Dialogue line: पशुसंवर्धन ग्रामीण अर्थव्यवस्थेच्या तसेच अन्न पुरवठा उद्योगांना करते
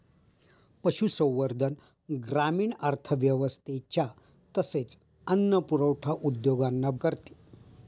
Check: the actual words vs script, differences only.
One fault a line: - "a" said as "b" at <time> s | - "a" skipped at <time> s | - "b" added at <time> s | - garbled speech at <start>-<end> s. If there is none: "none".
none